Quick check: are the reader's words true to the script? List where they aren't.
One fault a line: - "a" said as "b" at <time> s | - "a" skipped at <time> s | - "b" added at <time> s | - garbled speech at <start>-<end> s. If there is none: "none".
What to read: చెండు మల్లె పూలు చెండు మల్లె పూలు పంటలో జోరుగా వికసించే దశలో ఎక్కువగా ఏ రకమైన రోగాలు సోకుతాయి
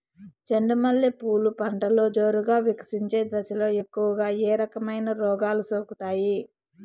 - "చెండు మల్లె పూలు" skipped at 1.5 s